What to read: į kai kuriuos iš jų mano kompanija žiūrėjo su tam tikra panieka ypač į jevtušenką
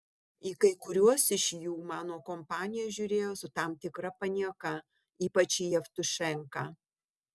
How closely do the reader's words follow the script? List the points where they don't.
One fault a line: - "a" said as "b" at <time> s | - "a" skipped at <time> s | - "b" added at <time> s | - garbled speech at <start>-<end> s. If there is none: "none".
none